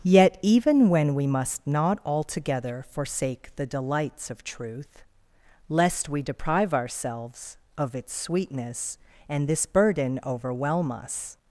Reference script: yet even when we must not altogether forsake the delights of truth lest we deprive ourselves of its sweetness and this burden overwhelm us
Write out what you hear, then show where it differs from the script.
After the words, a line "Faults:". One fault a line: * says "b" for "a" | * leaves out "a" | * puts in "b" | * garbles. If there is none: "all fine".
yet even when we must not altogether forsake the delights of truth lest we deprive ourselves of its sweetness and this burden overwhelm us
Faults:
all fine